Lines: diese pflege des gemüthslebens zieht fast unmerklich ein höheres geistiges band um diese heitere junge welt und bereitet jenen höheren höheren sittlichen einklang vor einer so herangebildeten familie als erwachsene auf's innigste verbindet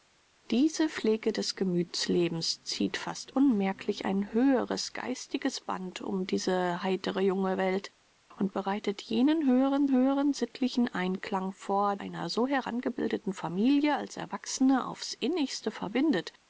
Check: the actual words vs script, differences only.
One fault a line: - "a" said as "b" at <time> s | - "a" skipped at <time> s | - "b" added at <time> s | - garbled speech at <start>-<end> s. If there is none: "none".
none